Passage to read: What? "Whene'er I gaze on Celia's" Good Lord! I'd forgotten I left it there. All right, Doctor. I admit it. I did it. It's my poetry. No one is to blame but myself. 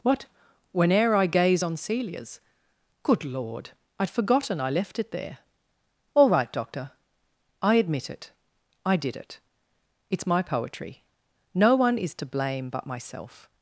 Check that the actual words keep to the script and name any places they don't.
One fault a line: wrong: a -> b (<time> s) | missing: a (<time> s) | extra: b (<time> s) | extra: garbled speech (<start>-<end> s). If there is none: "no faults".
no faults